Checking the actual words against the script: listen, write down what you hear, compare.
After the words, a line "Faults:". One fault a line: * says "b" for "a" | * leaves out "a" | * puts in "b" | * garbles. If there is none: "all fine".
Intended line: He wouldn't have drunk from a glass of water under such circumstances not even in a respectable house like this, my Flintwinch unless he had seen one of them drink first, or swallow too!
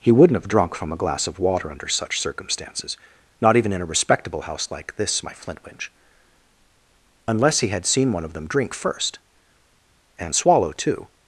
He wouldn't have drunk from a glass of water under such circumstances not even in a respectable house like this, my Flintwinch unless he had seen one of them drink first, and swallow too!
Faults:
* says "and" for "or"